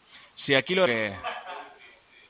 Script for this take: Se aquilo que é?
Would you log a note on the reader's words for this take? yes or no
no